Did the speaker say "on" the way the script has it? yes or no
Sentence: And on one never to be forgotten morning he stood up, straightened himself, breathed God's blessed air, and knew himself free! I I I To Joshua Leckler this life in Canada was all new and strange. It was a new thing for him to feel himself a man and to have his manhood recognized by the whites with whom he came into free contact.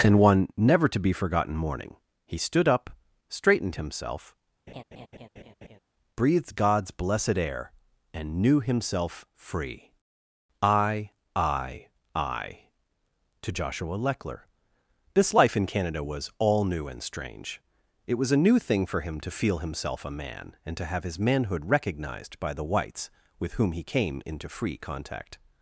no